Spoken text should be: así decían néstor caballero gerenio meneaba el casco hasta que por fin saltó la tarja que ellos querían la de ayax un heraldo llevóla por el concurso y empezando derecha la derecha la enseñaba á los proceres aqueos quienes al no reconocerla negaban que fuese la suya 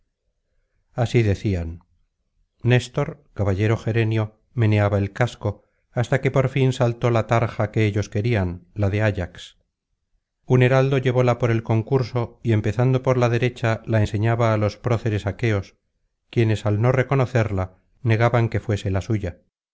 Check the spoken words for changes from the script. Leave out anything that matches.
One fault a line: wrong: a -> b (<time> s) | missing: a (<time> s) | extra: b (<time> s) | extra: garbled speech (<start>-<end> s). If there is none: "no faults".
wrong: derecha -> por (13.0 s)